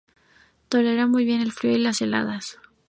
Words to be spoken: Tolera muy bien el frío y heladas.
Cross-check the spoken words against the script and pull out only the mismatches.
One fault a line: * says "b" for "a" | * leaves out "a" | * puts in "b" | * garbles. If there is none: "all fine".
* puts in "las"